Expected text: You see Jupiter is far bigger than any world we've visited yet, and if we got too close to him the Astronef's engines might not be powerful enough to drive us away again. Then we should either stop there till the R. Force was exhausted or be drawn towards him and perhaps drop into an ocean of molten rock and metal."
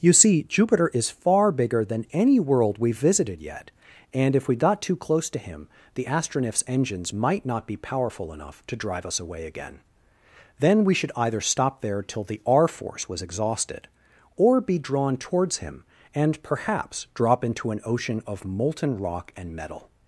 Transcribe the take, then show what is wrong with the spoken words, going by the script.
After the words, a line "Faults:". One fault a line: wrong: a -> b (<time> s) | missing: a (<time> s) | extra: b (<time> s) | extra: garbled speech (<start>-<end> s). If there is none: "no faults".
You see Jupiter is far bigger than any world we've visited yet, and if we got too close to him the Astronef's engines might not be powerful enough to drive us away again. Then we should either stop there till the R. Force was exhausted or be drawn towards him and perhaps drop into an ocean of molten rock and metal."
Faults:
no faults